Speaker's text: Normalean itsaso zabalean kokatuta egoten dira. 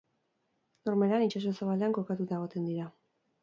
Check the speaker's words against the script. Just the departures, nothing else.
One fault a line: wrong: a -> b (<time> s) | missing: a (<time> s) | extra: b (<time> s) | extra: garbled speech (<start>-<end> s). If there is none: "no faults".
no faults